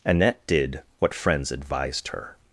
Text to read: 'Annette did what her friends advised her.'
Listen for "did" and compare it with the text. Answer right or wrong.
right